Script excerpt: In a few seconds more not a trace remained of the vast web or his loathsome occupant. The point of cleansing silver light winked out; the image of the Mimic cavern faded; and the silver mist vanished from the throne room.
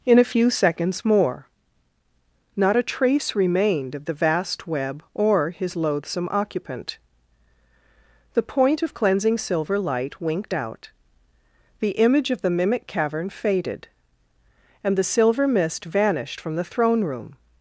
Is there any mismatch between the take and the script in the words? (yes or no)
no